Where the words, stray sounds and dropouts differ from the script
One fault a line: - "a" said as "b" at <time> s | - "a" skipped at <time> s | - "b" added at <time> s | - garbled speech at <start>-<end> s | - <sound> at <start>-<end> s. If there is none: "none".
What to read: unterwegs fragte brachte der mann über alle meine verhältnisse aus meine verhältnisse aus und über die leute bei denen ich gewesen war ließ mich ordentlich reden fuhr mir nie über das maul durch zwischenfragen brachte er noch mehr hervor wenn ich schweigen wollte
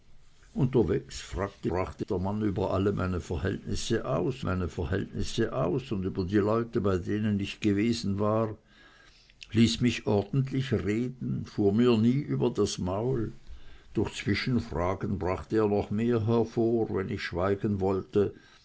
none